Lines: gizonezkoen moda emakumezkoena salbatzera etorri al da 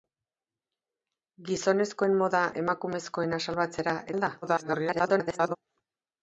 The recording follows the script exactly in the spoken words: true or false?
false